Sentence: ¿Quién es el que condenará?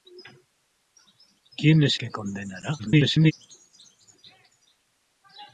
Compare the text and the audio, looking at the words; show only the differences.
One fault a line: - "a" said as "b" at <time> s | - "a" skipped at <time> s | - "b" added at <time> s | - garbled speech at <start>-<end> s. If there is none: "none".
- "el" skipped at 2.0 s
- garbled speech at 2.8-3.3 s